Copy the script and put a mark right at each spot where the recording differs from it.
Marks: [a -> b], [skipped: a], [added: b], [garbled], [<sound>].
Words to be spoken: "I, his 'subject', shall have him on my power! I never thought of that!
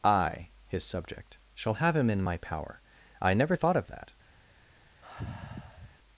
"I, his 'subject', shall have him [on -> in] my power! I never thought of that! [sigh]